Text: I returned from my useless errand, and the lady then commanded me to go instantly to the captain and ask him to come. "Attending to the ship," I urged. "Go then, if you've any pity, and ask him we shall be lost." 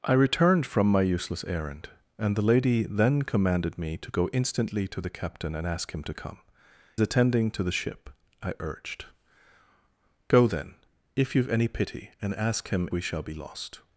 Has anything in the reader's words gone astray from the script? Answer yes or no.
no